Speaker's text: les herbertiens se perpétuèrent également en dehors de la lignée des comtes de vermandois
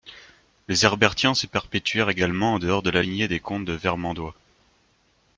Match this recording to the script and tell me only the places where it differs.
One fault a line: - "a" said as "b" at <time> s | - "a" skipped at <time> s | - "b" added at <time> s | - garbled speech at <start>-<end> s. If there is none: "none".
none